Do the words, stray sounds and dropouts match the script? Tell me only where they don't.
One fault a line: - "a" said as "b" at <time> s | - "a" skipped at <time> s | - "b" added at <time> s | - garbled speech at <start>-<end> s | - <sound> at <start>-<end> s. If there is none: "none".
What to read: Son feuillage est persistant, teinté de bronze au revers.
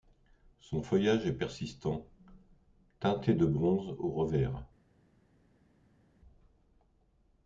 none